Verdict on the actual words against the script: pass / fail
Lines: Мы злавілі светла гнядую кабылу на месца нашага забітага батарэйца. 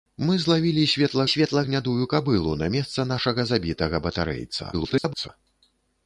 fail